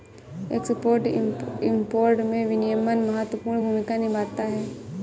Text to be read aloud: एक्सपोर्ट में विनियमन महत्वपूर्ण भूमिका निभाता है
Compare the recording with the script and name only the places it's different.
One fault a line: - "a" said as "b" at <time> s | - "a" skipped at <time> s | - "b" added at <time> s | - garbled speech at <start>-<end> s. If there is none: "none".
- "इंपोर्ट" added at 1.1 s